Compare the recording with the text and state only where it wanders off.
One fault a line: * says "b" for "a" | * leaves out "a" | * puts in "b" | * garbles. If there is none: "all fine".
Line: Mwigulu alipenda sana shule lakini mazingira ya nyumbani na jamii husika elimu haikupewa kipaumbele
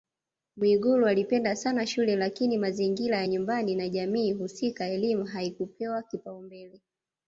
all fine